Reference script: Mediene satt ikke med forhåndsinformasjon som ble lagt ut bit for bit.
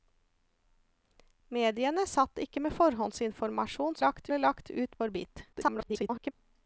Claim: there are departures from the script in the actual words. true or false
true